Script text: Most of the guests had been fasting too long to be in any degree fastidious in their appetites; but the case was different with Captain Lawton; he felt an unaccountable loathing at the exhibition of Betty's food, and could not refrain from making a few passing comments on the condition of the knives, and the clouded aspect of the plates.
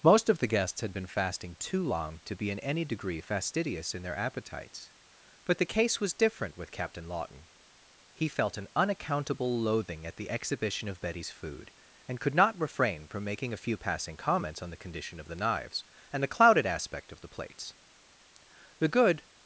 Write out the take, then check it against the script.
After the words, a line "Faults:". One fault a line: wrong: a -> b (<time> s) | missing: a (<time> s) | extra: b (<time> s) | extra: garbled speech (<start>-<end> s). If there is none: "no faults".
Most of the guests had been fasting too long to be in any degree fastidious in their appetites; but the case was different with Captain Lawton; he felt an unaccountable loathing at the exhibition of Betty's food, and could not refrain from making a few passing comments on the condition of the knives, and the clouded aspect of the plates. The good
Faults:
extra: The good (18.8 s)